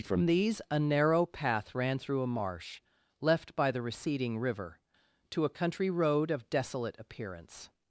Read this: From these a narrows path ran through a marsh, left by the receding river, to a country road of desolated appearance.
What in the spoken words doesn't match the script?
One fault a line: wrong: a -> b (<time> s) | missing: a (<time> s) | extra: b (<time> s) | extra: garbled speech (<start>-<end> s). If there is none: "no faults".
wrong: narrows -> narrow (0.8 s)
wrong: desolated -> desolate (6.5 s)